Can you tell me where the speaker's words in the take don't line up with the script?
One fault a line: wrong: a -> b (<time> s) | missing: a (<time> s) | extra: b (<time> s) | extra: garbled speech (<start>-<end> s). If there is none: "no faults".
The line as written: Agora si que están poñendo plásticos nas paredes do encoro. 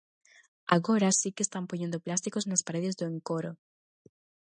no faults